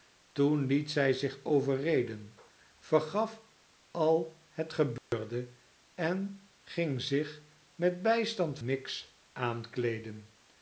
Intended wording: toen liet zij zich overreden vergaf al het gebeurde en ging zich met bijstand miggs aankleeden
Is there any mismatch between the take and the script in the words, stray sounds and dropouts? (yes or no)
yes